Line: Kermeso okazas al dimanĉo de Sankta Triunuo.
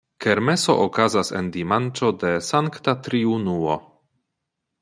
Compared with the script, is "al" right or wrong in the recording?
wrong